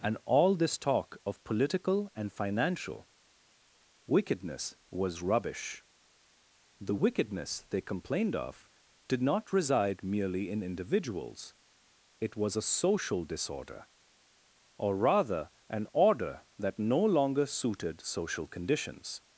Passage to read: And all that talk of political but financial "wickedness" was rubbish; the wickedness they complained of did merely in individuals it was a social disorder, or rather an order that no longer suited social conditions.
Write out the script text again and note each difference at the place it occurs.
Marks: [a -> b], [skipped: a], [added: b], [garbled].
And all [that -> this] talk of political [but -> and] financial "wickedness" was rubbish; the wickedness they complained of did [added: not reside] merely in individuals it was a social disorder, or rather an order that no longer suited social conditions.